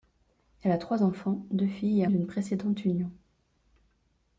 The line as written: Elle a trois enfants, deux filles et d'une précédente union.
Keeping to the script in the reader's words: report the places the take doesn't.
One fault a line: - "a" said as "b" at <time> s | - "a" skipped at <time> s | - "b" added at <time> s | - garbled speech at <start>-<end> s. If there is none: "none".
none